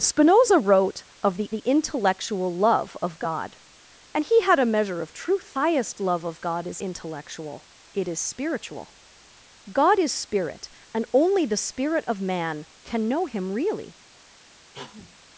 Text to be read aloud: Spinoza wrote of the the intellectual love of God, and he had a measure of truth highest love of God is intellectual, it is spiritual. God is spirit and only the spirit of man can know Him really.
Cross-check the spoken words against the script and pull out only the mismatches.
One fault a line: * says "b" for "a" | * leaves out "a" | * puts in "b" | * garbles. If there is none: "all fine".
all fine